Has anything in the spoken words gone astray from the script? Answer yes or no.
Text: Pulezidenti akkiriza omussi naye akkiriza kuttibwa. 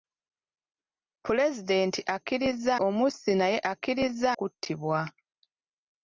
no